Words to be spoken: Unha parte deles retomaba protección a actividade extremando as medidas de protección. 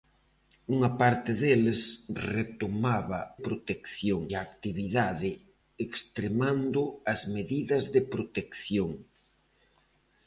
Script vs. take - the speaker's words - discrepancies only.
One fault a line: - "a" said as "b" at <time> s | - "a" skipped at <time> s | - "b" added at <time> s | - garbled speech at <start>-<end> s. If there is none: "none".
none